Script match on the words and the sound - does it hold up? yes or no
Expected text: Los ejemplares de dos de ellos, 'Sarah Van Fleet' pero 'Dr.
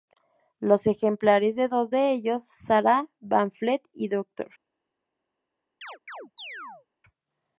no